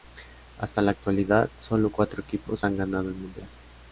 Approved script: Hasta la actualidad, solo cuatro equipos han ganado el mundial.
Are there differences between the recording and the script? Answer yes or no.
no